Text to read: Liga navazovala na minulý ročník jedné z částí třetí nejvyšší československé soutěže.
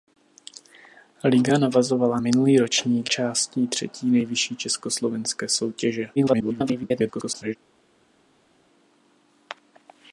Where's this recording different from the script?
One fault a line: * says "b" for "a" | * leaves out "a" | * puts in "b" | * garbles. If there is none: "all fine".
* leaves out "na"
* leaves out "jedné z"
* garbles